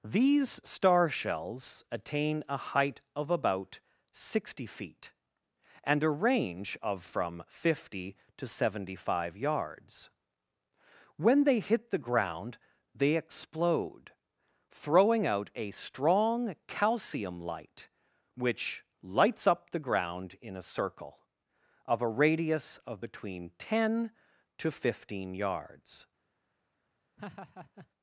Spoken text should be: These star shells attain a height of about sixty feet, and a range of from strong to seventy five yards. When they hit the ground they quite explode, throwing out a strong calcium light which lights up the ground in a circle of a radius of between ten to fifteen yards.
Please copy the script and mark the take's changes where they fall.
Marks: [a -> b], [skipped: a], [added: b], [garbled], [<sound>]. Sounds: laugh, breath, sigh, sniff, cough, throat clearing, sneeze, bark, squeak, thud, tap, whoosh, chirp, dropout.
These star shells attain a height of about sixty feet, and a range of from [strong -> fifty] to seventy five yards. When they hit the ground they [skipped: quite] explode, throwing out a strong calcium light which lights up the ground in a circle of a radius of between ten to fifteen yards. [laugh]